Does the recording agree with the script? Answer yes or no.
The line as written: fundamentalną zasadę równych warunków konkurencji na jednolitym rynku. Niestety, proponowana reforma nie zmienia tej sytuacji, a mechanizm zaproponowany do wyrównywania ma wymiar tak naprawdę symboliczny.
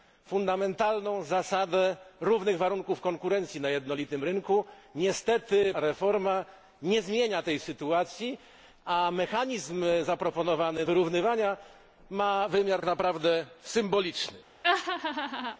no